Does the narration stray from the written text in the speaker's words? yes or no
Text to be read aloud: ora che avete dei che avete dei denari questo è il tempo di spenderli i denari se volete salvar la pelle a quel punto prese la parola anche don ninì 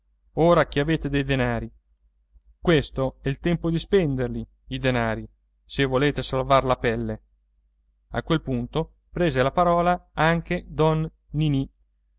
yes